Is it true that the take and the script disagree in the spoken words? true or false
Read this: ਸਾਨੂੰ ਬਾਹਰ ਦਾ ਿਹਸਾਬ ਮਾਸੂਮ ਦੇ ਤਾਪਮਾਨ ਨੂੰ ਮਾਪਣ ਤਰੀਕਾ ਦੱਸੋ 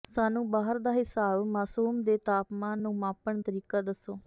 false